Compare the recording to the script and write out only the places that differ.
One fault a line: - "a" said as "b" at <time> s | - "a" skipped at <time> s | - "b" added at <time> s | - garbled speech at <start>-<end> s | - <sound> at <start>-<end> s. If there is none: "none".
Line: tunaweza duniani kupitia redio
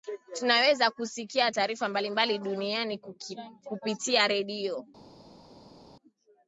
- "kusikia taarifa mbalimbali" added at 0.9 s